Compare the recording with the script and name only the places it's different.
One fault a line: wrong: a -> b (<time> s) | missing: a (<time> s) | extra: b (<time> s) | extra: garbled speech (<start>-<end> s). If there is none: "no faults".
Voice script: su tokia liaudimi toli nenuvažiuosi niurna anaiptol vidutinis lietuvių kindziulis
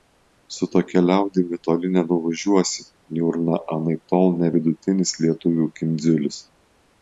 extra: ne (4.4 s)